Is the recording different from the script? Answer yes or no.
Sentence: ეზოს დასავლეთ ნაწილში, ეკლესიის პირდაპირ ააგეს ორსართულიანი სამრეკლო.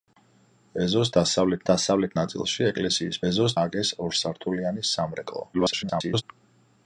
yes